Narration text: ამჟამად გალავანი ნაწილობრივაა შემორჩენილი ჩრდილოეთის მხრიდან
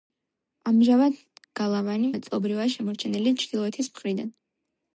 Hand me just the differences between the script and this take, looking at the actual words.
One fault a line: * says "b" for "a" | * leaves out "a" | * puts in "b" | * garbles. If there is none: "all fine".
all fine